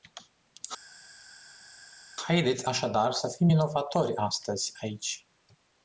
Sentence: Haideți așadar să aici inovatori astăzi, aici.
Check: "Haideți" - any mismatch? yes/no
no